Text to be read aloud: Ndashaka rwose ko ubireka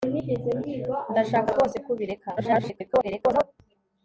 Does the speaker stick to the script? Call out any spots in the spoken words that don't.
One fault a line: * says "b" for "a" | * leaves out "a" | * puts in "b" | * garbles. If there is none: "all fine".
* garbles